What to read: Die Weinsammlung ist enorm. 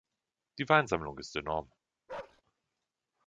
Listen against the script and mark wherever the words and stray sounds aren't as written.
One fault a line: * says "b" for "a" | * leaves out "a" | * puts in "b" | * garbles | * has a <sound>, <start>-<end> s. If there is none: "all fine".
* has a bark, 2.1-2.4 s